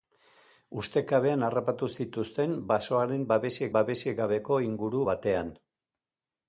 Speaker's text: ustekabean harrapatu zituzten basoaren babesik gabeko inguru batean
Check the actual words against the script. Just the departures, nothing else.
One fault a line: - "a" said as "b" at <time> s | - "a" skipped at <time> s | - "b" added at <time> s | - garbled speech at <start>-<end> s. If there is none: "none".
- "babesik" added at 3.8 s